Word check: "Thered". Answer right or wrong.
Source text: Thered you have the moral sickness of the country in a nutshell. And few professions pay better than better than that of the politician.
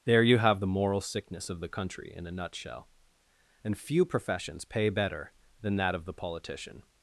wrong